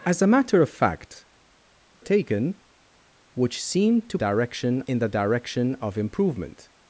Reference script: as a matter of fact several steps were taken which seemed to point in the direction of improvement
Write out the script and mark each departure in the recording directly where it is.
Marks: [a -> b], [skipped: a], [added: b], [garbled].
as a matter of fact [skipped: several steps were] taken which seemed to [point -> direction] in the direction of improvement